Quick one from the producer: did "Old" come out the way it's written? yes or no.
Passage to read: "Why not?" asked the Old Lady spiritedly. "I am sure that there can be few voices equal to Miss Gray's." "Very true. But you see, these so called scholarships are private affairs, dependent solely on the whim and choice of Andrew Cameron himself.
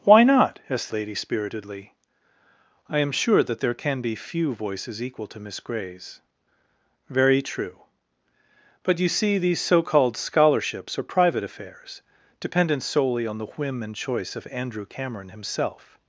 no